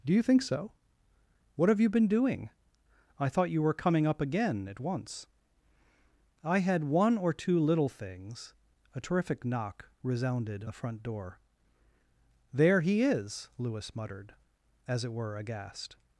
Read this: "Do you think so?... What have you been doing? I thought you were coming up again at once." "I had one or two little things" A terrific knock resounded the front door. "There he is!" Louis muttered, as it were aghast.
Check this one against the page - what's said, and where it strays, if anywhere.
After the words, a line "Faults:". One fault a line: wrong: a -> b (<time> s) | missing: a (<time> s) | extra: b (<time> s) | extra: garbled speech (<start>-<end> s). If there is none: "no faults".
"Do you think so?... What have you been doing? I thought you were coming up again at once." "I had one or two little things" A terrific knock resounded the front door. "There he is!" Louis muttered, as it were aghast.
Faults:
no faults